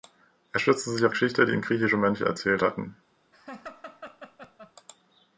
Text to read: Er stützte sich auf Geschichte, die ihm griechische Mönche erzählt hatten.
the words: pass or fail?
pass